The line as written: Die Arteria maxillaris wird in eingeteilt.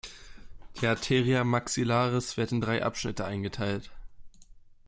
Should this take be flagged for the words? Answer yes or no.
yes